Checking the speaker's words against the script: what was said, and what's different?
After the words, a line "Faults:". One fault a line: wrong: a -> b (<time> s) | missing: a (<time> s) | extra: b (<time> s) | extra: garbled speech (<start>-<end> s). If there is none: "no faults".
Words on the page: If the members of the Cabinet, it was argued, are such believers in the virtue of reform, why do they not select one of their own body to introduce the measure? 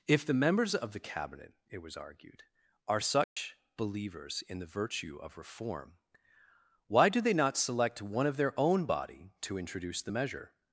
If the members of the Cabinet, it was argued, are such believers in the virtue of reform, why do they not select one of their own body to introduce the measure?
Faults:
no faults